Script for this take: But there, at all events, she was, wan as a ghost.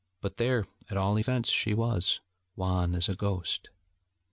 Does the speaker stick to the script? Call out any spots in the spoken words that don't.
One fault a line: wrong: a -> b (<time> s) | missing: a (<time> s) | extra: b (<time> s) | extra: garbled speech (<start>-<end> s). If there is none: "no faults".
no faults